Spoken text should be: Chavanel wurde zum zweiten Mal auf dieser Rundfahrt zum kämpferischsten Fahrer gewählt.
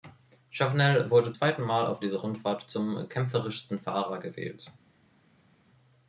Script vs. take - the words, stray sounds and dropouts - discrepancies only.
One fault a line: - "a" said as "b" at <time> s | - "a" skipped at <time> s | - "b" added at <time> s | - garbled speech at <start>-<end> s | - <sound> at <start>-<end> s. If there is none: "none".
- "zum" skipped at 1.3 s